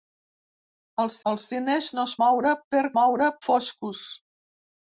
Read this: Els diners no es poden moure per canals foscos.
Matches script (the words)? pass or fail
fail